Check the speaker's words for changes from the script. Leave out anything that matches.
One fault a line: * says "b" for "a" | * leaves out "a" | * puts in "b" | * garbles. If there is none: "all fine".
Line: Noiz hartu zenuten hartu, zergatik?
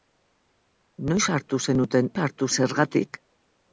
all fine